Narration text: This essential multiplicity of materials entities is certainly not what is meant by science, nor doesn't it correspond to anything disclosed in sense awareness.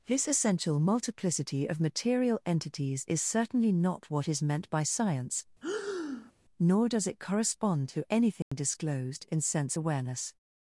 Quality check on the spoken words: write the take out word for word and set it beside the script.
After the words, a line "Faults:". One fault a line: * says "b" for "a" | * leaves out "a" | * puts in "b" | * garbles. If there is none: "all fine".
This essential multiplicity of material entities is certainly not what is meant by science, nor does it correspond to anything disclosed in sense awareness.
Faults:
* says "material" for "materials"
* says "does" for "doesn't"